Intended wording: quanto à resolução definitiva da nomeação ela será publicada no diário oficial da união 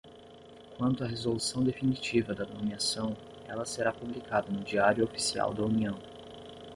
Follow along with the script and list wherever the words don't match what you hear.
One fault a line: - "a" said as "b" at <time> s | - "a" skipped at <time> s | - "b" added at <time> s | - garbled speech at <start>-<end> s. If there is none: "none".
none